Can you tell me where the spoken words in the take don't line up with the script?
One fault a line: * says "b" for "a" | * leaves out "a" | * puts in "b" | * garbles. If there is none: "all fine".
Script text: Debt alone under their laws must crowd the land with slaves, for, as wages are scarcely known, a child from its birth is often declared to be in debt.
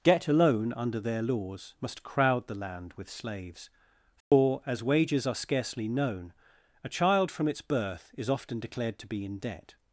* says "Get" for "Debt"